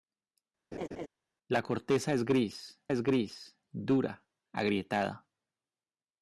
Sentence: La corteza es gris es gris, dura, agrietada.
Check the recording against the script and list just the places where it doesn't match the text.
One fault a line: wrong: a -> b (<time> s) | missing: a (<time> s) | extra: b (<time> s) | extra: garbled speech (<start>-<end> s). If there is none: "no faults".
no faults